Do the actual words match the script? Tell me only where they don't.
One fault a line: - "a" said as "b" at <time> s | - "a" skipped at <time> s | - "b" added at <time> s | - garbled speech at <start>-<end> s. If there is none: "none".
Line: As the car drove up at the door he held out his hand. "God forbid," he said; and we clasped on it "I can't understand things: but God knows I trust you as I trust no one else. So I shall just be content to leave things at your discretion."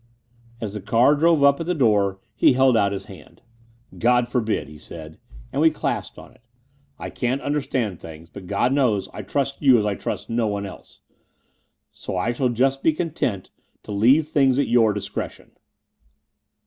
none